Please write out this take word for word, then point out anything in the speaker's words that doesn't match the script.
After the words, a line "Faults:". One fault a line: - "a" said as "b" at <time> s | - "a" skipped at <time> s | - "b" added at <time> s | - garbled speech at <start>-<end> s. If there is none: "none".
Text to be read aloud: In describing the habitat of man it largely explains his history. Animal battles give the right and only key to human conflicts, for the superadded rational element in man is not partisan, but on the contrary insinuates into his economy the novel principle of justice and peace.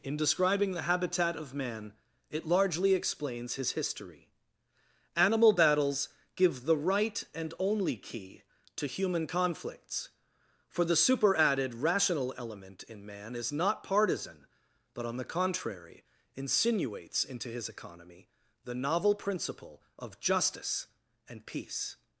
In describing the habitat of man it largely explains his history. Animal battles give the right and only key to human conflicts, for the superadded rational element in man is not partisan, but on the contrary insinuates into his economy the novel principle of justice and peace.
Faults:
none